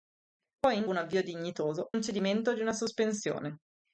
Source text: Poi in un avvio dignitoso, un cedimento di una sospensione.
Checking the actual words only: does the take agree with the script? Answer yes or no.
yes